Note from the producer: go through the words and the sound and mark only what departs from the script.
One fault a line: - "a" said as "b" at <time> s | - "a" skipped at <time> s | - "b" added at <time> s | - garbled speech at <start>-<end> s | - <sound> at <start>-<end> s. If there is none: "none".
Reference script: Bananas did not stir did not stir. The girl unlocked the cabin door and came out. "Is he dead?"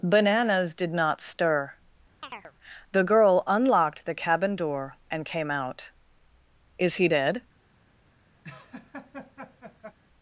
- "did not stir" skipped at 1.7 s
- chirp at 2.2-2.5 s
- laugh at 8.4-10.0 s